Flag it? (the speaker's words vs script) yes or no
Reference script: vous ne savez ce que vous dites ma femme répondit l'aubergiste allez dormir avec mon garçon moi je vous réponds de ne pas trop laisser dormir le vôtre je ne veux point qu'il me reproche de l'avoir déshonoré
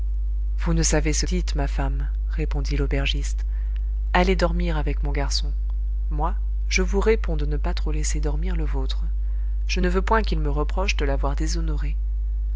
yes